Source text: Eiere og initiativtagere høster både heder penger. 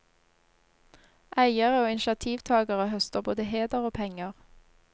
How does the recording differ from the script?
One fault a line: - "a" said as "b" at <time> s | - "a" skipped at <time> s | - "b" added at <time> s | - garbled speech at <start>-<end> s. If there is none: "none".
- "og" added at 3.8 s